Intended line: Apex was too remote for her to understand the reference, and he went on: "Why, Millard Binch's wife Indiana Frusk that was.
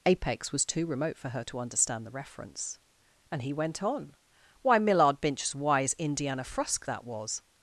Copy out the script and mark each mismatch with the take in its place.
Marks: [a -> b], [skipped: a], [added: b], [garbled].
Apex was too remote for her to understand the reference, and he went on: "Why, Millard Binch's [wife -> wise] Indiana Frusk that was.